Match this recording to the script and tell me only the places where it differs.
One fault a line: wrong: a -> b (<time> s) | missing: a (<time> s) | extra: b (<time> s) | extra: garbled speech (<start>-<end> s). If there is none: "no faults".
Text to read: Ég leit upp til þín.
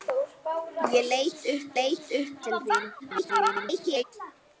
extra: leit upp (1.8 s)
extra: garbled speech (3.0-4.0 s)